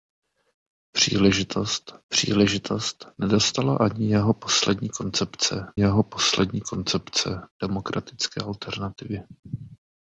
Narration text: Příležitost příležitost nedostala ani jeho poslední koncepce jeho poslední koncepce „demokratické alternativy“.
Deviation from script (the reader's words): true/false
false